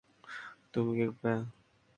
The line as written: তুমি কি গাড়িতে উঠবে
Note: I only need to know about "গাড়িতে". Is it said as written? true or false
false